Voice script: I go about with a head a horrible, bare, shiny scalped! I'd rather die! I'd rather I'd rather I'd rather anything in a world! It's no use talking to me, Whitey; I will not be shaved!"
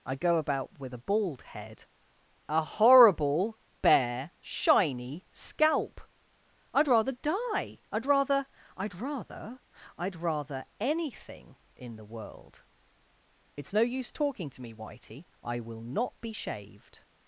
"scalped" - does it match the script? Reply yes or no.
no